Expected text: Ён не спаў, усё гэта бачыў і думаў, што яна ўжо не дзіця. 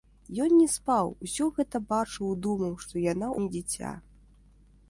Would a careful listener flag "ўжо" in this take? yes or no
yes